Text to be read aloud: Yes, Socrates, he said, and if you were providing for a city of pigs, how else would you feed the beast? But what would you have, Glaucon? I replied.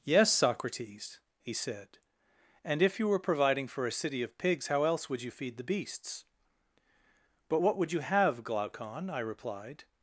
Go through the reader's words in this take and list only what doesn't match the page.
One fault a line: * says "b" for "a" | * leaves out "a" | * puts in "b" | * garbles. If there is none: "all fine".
* says "beasts" for "beast"